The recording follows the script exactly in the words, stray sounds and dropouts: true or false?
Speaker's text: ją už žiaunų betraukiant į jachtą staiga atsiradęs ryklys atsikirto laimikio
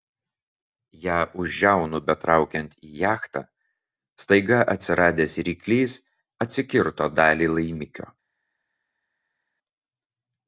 false